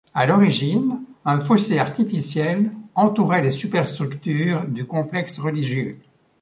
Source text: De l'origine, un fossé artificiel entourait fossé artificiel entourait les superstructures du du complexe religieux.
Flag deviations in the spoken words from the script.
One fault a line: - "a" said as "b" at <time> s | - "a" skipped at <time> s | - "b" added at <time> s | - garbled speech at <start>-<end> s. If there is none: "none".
- "De" said as "À" at 0.1 s
- "fossé artificiel entourait" skipped at 3.4 s
- "du" skipped at 4.9 s